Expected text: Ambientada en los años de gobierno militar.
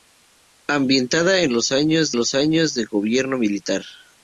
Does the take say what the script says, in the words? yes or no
no